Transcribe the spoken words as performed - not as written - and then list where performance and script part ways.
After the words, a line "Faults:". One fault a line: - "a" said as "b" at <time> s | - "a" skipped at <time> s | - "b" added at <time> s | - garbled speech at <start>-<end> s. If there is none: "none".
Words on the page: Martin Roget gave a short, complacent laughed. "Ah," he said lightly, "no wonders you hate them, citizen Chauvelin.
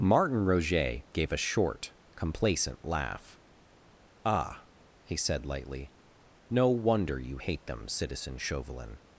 Martin Roget gave a short, complacent laugh. "Ah," he said lightly, "no wonder you hate them, citizen Chauvelin.
Faults:
- "laughed" said as "laugh" at 2.8 s
- "wonders" said as "wonder" at 6.7 s